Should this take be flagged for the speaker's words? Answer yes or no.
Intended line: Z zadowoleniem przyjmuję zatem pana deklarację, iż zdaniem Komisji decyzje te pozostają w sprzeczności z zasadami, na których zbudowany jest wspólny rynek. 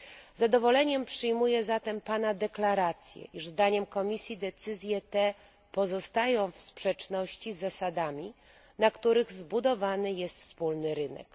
no